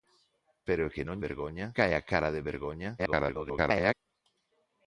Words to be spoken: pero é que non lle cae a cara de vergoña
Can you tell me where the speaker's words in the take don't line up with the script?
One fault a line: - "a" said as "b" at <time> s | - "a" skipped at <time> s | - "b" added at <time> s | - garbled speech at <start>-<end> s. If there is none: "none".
- "lle" said as "vergoña" at 1.3 s
- garbled speech at 3.0-3.9 s